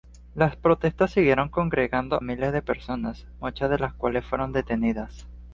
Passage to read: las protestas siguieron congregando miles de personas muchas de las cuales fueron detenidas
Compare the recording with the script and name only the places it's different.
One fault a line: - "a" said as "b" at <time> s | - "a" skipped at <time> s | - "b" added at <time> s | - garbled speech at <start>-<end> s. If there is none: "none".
none